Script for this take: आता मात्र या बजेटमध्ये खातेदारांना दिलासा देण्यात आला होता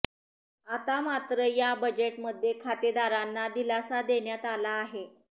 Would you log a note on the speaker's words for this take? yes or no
yes